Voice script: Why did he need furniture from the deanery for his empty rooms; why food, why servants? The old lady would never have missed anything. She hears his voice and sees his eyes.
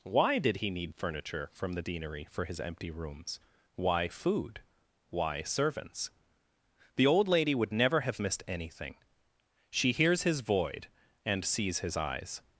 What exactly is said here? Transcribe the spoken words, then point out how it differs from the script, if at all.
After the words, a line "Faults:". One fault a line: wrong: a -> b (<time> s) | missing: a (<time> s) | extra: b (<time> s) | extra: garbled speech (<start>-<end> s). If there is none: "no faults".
Why did he need furniture from the deanery for his empty rooms; why food, why servants? The old lady would never have missed anything. She hears his void and sees his eyes.
Faults:
wrong: voice -> void (10.4 s)